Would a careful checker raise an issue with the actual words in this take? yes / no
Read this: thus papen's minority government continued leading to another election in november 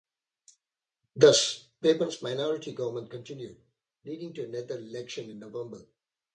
no